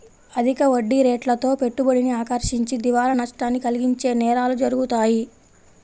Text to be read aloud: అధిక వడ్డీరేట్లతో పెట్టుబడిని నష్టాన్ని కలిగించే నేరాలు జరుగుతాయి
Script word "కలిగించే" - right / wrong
right